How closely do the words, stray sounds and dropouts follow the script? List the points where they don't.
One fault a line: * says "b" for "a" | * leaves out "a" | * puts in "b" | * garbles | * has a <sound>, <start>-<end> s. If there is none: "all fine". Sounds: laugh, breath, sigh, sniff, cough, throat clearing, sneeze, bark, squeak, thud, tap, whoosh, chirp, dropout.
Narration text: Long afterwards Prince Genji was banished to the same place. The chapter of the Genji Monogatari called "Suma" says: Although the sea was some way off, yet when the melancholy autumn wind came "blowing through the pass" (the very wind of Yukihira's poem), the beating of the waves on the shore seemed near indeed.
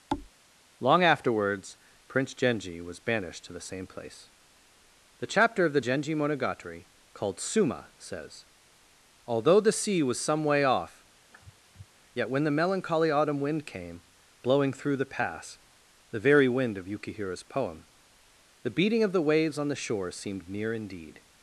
* has a thud, 0.1-0.3 s
* has a sniff, 11.3-11.9 s